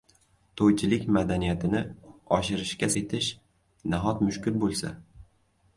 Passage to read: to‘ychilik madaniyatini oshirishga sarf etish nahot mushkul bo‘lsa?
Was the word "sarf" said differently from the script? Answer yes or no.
yes